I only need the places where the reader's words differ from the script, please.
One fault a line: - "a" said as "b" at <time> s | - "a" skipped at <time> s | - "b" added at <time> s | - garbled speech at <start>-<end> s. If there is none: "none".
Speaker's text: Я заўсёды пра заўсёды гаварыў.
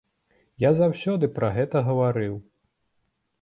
- "заўсёды" said as "гэта" at 1.6 s